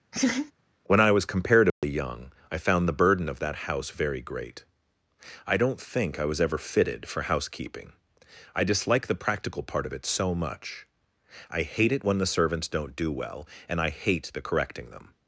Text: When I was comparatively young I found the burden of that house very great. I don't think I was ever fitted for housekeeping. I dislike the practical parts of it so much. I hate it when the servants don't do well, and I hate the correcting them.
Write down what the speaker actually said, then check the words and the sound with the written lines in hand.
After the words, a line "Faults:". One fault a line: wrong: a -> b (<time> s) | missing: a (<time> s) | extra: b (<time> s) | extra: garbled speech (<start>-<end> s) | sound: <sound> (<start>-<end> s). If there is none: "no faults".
When I was comparatively young I found the burden of that house very great. I don't think I was ever fitted for housekeeping. I dislike the practical part of it so much. I hate it when the servants don't do well, and I hate the correcting them.
Faults:
sound: laugh (0.1-0.5 s)
sound: dropout (1.7-1.8 s)
wrong: parts -> part (9.6 s)